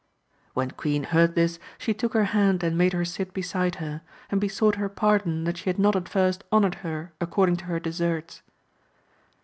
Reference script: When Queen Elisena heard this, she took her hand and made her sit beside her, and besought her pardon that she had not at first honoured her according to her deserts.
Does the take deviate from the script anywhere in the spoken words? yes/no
yes